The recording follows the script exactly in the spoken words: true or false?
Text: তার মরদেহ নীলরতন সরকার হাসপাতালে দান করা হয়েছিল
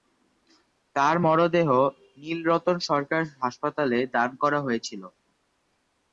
true